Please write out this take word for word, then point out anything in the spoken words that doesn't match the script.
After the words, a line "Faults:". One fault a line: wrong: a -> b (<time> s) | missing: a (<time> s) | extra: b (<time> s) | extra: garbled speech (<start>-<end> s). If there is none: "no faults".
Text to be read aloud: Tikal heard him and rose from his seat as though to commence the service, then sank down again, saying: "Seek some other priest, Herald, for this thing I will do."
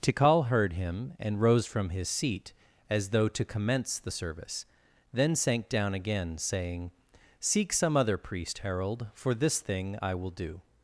Tikal heard him and rose from his seat as though to commence the service, then sank down again, saying: "Seek some other priest, Herald, for this thing I will do."
Faults:
no faults